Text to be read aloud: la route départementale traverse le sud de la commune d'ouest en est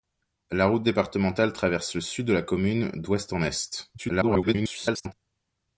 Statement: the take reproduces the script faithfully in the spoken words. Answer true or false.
false